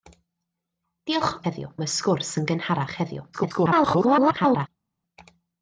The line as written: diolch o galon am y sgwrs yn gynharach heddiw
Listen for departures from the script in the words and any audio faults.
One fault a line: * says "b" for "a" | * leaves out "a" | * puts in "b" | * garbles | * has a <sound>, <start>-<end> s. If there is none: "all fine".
* says "heddiw" for "galon"
* garbles